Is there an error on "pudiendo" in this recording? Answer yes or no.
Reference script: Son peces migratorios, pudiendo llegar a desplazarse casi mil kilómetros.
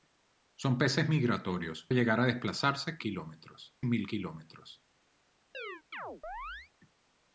yes